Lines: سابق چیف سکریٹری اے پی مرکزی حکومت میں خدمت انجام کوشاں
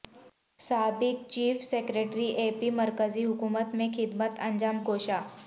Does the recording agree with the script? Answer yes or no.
yes